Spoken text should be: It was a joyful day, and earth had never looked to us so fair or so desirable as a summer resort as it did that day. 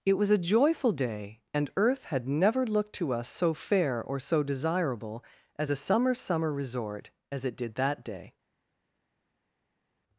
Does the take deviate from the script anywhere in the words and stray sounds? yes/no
yes